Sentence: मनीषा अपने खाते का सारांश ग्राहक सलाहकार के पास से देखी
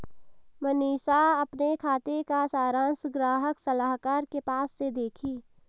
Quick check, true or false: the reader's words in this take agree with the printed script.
true